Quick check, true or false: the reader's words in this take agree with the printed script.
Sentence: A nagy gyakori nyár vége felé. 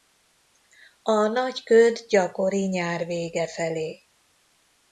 false